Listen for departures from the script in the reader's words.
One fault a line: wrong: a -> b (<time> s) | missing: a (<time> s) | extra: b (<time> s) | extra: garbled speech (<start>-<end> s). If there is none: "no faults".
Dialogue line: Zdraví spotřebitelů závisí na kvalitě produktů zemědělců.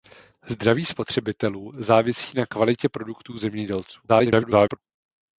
extra: garbled speech (4.1-4.8 s)